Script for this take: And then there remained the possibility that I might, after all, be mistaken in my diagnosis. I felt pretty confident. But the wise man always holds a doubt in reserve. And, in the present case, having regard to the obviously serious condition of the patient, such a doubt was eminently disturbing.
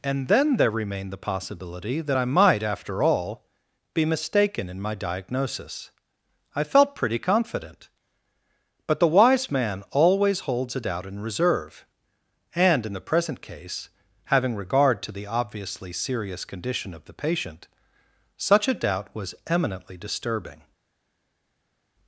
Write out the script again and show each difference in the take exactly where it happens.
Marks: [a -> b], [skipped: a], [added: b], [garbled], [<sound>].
And then there remained the possibility that I might, after all, be mistaken in my diagnosis. I felt pretty confident. But the wise man always holds a doubt in reserve. And, in the present case, having regard to the obviously serious condition of the patient, such a doubt was eminently disturbing.